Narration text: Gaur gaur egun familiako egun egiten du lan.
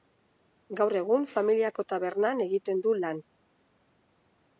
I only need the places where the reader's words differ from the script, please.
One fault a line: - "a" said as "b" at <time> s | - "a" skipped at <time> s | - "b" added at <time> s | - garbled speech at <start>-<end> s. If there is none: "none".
- "gaur" skipped at 0.9 s
- "egun" said as "tabernan" at 1.9 s